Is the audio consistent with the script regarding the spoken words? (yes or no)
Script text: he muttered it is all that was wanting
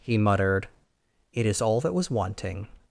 yes